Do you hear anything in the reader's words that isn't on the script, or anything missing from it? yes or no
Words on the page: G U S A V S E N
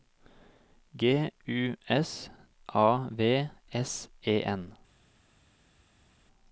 no